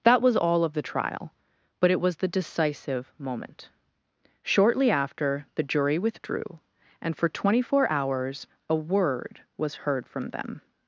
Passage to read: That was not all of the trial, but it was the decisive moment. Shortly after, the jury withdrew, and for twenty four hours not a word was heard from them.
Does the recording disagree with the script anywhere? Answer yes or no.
yes